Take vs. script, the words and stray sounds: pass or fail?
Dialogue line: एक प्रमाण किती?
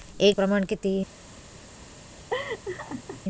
fail